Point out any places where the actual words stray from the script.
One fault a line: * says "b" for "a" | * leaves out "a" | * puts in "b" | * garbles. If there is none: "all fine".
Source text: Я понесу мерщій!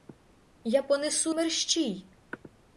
all fine